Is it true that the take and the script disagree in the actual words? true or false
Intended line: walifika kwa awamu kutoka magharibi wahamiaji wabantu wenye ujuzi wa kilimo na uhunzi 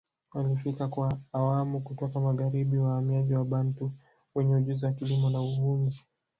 false